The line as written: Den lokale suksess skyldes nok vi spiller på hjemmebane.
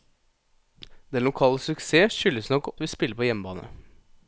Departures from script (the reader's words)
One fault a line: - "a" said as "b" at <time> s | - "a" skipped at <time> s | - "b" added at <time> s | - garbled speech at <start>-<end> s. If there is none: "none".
none